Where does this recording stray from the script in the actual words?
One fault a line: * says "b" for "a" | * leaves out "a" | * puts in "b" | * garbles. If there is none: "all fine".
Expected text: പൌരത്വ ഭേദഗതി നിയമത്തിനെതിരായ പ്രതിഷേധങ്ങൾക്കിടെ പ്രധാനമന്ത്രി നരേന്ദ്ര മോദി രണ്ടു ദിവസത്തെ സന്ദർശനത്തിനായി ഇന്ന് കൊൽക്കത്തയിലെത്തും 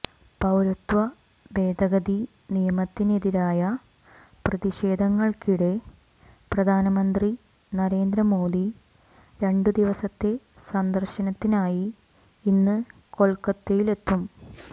all fine